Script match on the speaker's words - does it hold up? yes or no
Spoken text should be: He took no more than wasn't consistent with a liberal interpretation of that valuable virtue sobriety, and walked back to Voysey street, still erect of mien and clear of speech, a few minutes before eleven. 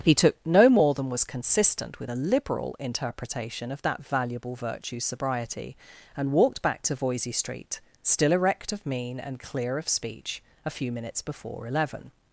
no